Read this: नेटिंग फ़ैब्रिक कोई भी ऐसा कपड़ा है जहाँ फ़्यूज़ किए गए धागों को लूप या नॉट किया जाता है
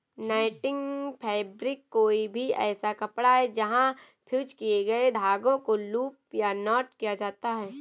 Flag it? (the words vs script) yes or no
no